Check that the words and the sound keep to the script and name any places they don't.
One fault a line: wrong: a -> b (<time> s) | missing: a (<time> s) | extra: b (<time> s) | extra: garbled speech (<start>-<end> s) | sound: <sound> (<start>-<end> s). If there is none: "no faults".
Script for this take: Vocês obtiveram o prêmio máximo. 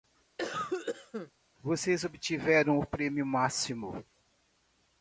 sound: cough (0.4-1.3 s)